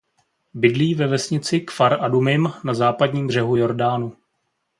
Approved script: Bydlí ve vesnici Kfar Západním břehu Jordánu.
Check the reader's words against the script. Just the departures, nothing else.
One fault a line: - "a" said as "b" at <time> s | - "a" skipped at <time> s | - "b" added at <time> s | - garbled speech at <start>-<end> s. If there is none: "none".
- "Adumim na" added at 2.0 s